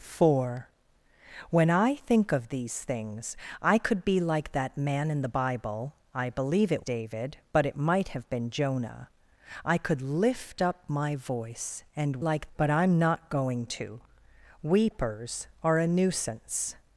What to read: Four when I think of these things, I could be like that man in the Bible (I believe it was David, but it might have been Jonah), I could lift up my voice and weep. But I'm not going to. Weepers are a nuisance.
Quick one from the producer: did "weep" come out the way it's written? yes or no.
no